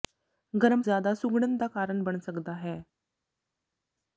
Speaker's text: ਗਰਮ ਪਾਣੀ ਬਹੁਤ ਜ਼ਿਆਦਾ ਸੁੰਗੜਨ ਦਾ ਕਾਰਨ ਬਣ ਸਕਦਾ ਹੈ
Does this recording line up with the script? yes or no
no